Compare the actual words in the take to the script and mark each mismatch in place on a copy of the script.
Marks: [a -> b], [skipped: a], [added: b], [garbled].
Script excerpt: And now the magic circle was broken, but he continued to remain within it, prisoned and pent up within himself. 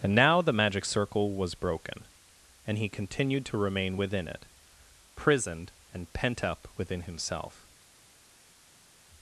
And now the magic circle was broken, [but -> and] he continued to remain within it, prisoned and pent up within himself.